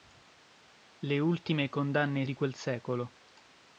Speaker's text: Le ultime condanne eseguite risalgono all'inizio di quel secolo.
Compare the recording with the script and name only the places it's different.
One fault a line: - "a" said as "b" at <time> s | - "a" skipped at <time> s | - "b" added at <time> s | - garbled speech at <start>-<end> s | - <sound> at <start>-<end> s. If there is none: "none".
- "eseguite risalgono all'inizio" skipped at 2.2 s